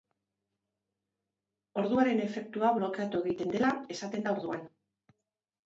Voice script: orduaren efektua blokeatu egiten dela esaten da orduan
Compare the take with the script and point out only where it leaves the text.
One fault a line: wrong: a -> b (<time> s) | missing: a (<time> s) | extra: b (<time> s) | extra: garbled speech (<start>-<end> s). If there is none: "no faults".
no faults